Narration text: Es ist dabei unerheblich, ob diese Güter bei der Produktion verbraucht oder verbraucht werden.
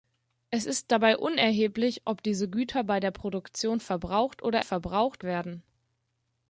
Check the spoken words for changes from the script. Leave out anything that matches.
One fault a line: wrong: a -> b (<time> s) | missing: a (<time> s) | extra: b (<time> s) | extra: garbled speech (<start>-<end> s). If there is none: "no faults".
no faults